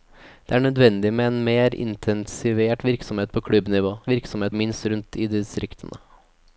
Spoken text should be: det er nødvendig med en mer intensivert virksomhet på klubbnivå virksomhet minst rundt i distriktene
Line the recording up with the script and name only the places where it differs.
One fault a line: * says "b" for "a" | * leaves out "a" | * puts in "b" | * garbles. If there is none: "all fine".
all fine